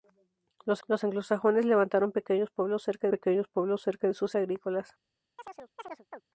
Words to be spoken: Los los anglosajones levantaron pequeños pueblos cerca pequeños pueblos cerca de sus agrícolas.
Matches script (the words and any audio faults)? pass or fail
fail